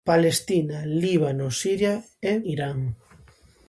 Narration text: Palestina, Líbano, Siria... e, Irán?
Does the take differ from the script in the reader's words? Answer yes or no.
no